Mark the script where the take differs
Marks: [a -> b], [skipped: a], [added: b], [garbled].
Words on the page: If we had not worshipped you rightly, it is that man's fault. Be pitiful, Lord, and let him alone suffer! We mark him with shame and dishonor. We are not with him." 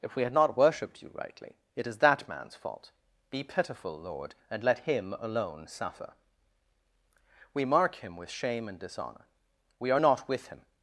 If we had not worshipped you rightly, it is that man's fault. Be pitiful, Lord, and let him alone suffer! We mark him with shame and dishonor. We are not with him."